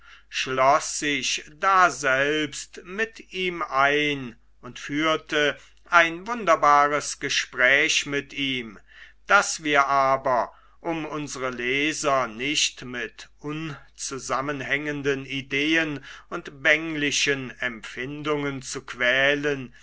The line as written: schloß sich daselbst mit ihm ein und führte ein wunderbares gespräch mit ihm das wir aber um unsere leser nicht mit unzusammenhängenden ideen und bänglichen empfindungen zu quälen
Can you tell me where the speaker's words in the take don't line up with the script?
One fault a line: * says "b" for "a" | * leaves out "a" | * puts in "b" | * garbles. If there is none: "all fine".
all fine